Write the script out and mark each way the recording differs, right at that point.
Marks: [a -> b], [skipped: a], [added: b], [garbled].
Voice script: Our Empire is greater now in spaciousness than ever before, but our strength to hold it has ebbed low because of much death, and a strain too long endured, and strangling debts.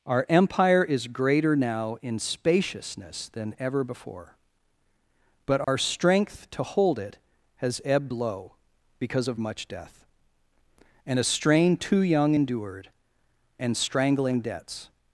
Our Empire is greater now in spaciousness than ever before, but our strength to hold it has ebbed low because of much death, and a strain too [long -> young] endured, and strangling debts.